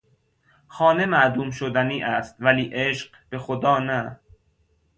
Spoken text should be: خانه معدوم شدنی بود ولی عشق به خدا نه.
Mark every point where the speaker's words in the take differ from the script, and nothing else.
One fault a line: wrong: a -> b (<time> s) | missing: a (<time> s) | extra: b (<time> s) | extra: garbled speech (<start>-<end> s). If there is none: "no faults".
wrong: بود -> است (2.0 s)